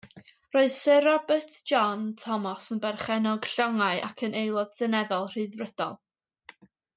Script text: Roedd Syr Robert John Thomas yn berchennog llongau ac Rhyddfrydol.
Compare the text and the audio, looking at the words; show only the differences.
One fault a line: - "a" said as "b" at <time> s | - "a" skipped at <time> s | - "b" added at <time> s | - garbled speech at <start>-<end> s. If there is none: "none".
- "yn Aelod Seneddol" added at 4.3 s